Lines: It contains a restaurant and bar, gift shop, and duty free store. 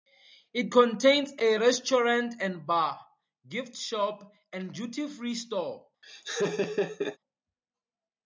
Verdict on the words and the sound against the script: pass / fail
fail